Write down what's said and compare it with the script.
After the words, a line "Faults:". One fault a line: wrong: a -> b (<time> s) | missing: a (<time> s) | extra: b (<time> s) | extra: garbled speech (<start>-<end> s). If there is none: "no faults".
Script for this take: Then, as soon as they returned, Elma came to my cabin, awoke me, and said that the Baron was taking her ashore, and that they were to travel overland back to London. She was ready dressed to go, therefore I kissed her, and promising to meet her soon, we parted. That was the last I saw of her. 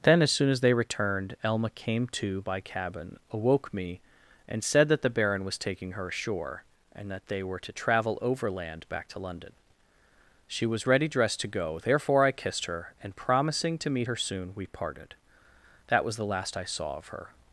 Then, as soon as they returned, Elma came to by cabin, awoke me, and said that the Baron was taking her ashore, and that they were to travel overland back to London. She was ready dressed to go, therefore I kissed her, and promising to meet her soon, we parted. That was the last I saw of her.
Faults:
wrong: my -> by (2.4 s)